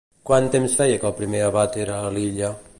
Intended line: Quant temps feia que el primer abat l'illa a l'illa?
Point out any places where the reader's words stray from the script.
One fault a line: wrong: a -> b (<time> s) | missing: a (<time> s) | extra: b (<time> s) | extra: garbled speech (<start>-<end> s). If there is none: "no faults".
wrong: l'illa -> era (1.9 s)